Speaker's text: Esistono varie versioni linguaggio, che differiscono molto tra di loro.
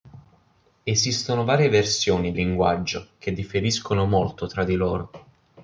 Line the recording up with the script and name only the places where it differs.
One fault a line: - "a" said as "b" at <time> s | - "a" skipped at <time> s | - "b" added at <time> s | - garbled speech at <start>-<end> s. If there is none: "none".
none